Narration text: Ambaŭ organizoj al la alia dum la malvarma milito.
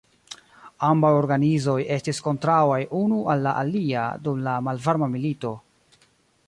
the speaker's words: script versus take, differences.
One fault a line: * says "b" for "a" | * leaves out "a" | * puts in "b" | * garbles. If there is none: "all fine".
* puts in "estis kontraŭaj unu"